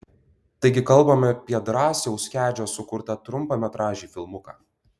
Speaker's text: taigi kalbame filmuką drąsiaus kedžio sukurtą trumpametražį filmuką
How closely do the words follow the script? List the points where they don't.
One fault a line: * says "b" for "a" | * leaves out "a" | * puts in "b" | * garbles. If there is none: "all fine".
* says "apie" for "filmuką"